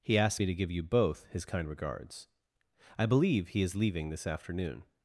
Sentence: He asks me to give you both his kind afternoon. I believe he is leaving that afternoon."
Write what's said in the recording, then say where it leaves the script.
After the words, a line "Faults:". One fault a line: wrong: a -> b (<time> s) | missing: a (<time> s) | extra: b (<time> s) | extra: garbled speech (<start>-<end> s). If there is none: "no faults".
He asked me to give you both his kind regards. I believe he is leaving this afternoon."
Faults:
wrong: asks -> asked (0.2 s)
wrong: afternoon -> regards (1.7 s)
wrong: that -> this (4.1 s)